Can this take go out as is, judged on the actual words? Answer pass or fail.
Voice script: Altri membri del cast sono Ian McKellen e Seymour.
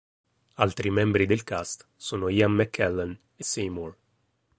pass